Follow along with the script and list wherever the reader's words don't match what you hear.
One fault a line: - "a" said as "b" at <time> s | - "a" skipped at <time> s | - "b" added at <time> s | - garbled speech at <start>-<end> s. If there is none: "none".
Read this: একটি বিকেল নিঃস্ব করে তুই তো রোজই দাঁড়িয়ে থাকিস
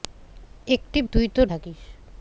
- "বিকেল নিঃস্ব করে" skipped at 1.0 s
- "রোজই দাঁড়িয়ে" skipped at 1.4 s